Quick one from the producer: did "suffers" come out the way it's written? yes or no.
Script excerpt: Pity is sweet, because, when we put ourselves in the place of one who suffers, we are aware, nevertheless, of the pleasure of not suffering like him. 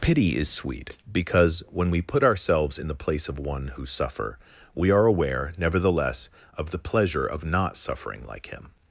no